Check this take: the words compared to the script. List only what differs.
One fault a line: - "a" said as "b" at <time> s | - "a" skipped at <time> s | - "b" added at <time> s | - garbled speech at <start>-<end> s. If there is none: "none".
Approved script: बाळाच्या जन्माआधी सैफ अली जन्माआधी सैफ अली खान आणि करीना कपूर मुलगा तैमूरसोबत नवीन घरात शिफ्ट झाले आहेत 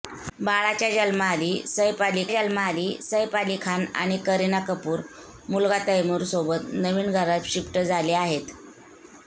none